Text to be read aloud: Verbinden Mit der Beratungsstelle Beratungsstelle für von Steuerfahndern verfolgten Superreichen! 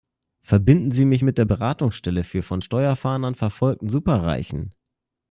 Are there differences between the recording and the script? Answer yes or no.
yes